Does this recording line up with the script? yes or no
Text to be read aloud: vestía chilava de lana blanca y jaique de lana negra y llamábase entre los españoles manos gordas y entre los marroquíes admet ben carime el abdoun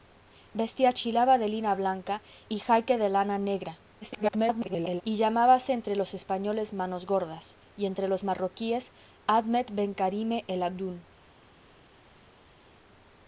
no